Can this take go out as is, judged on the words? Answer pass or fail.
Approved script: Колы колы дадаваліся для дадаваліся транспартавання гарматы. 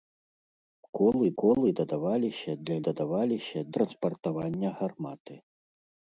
pass